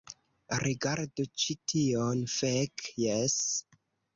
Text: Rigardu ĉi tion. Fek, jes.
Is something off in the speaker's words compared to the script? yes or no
no